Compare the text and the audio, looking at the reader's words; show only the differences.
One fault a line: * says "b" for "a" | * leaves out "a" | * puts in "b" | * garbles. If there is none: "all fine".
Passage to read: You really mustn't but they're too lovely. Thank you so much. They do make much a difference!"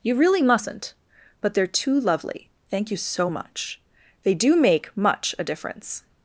all fine